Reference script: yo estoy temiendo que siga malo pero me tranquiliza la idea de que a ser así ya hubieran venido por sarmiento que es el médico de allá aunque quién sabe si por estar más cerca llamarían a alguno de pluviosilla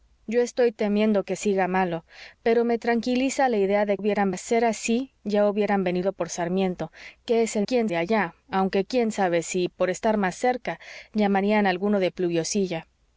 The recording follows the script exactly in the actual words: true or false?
false